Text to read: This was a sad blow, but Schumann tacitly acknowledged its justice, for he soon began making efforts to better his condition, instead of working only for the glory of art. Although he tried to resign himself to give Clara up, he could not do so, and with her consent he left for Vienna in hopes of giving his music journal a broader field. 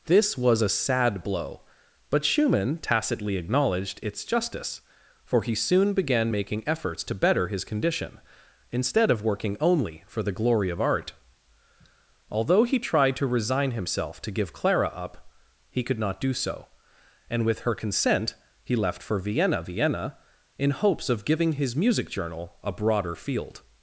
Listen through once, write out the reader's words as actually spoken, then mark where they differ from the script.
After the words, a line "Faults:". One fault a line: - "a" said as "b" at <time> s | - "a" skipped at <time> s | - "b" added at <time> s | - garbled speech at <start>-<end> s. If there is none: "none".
This was a sad blow, but Schumann tacitly acknowledged its justice, for he soon began making efforts to better his condition, instead of working only for the glory of art. Although he tried to resign himself to give Clara up, he could not do so, and with her consent he left for Vienna Vienna in hopes of giving his music journal a broader field.
Faults:
- "Vienna" added at 19.6 s